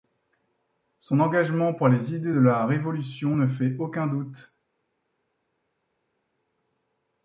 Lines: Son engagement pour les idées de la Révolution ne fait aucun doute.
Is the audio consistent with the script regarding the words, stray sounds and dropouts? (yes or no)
yes